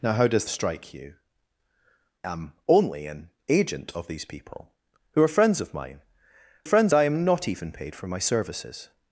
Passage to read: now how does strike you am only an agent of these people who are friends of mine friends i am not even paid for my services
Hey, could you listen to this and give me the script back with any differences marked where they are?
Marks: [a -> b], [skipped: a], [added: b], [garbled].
now how does strike you am only an agent of these people who are friends of mine friends i am not even paid for my services